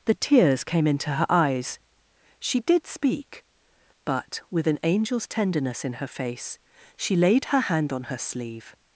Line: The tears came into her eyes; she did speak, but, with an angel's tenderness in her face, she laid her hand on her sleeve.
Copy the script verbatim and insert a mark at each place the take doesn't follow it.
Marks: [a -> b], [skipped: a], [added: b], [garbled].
The tears came into her eyes; she did speak, but, with an angel's tenderness in her face, she laid her hand on her sleeve.